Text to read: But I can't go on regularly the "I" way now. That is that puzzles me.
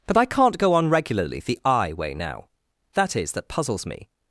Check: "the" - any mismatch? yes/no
no